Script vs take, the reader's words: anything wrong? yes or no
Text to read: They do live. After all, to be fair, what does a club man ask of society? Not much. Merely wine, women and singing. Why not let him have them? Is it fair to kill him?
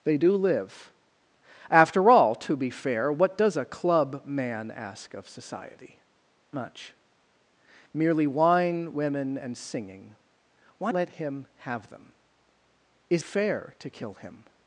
yes